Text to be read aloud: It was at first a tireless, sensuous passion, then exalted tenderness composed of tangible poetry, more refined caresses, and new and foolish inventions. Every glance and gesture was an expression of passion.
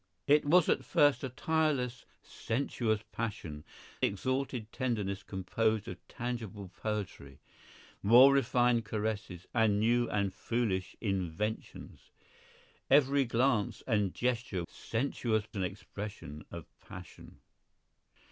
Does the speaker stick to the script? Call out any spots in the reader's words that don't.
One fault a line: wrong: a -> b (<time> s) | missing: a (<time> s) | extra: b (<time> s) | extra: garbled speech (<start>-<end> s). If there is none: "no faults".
missing: then (3.6 s)
wrong: was -> sensuous (14.7 s)